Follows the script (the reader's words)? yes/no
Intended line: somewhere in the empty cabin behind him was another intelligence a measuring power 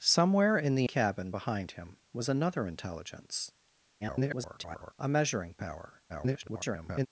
no